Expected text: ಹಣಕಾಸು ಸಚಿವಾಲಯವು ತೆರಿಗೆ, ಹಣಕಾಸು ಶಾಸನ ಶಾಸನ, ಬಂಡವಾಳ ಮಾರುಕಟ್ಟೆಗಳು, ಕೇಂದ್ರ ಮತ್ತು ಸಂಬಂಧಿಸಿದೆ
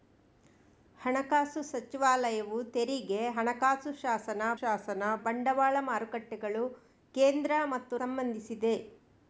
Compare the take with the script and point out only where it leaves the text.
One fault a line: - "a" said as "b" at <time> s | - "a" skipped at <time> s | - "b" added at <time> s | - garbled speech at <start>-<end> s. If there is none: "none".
none